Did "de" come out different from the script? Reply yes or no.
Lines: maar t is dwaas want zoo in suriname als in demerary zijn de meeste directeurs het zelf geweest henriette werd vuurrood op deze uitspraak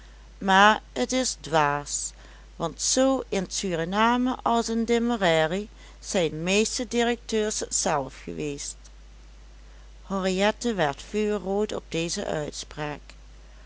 yes